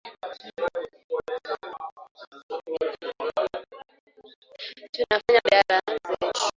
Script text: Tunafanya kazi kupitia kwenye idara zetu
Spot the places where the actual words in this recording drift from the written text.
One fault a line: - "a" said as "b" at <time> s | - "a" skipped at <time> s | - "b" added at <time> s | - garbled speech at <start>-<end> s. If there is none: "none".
- "kazi kupitia kwenye" skipped at 5.4 s